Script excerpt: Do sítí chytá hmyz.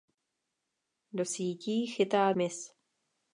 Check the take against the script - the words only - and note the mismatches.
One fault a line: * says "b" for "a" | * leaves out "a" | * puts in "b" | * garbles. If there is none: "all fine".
all fine